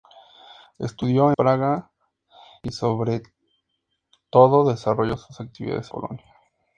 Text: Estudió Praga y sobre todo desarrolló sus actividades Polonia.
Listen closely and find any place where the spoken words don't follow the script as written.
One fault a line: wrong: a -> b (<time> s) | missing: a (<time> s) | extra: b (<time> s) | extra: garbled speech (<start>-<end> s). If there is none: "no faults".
no faults